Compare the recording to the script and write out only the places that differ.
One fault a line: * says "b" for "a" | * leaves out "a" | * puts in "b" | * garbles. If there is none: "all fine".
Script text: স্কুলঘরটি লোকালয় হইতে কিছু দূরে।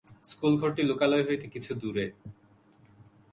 all fine